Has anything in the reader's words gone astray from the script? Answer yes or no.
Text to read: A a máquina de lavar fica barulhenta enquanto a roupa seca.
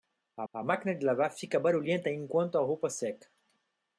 no